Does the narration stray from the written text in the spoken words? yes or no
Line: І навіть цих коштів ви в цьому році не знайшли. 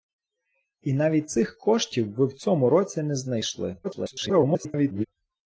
yes